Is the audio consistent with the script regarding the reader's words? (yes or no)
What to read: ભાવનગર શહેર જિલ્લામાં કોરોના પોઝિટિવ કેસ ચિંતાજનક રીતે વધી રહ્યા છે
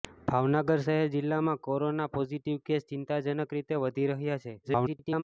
no